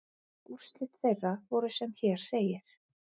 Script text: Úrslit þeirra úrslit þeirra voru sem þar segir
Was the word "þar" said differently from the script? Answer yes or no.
yes